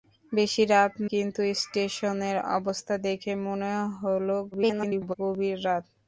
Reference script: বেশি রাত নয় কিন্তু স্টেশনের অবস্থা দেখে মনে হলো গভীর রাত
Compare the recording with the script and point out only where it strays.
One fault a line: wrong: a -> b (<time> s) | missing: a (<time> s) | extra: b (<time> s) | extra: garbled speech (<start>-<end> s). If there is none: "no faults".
missing: নয় (0.9 s)
extra: garbled speech (4.5-5.1 s)